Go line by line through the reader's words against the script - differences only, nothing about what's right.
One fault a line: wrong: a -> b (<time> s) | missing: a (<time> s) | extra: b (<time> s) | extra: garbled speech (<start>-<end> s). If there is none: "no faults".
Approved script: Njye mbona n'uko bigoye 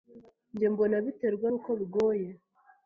extra: biterwa (1.1 s)